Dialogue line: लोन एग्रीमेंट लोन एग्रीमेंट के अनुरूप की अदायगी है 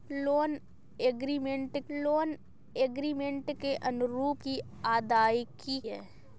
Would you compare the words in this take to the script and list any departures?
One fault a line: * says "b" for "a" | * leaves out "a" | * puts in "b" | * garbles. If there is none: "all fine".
all fine